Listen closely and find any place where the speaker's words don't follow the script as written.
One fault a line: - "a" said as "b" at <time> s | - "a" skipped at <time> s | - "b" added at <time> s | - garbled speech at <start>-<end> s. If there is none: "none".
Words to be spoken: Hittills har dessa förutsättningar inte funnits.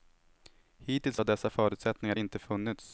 none